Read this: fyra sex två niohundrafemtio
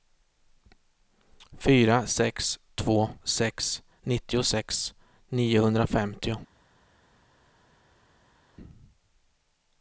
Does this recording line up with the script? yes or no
no